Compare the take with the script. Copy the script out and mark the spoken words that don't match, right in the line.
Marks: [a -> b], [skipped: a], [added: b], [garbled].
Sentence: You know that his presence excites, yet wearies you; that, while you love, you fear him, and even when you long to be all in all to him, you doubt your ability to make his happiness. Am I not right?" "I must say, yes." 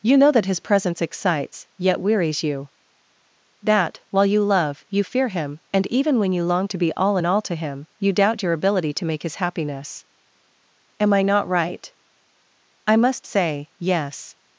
You know that his presence excites, yet wearies you; that, while you love, you fear him, and even when you long to be all in all to him, you doubt your ability to make his happiness. Am I not right?" "I must say, yes."